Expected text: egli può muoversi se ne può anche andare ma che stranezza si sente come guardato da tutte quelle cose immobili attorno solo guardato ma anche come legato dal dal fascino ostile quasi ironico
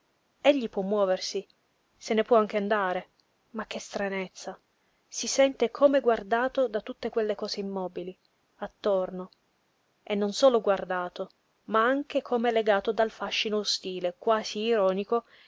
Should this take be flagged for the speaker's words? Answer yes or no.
yes